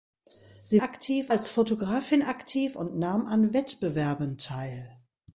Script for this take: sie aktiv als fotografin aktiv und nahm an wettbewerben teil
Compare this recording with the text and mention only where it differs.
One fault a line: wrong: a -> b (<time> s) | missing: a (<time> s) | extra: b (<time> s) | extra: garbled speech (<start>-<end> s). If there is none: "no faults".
no faults